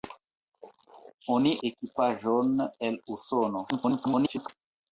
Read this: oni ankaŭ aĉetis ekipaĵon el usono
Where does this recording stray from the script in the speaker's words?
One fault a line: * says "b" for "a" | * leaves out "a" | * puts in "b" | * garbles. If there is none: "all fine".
* leaves out "ankaŭ aĉetis"
* garbles